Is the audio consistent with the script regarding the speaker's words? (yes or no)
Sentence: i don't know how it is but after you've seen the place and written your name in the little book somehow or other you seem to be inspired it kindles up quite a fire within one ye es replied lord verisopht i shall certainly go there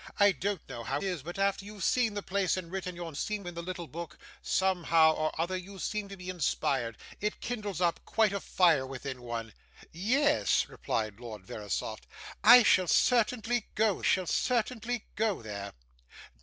no